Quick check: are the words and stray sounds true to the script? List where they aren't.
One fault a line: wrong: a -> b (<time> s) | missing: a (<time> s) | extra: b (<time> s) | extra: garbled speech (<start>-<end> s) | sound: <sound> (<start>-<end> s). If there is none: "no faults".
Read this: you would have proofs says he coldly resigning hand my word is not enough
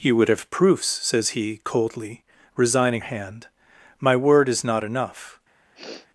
sound: sniff (5.8-6.1 s)